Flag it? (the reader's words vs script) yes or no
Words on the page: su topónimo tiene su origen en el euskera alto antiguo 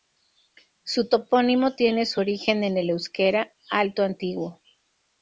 no